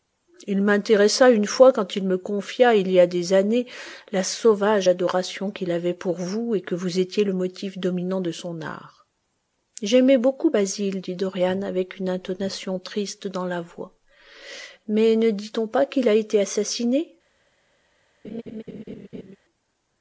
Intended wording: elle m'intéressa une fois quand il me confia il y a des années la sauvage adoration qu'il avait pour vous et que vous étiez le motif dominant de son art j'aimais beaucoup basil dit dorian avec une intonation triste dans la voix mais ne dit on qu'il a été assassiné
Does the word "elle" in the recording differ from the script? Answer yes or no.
yes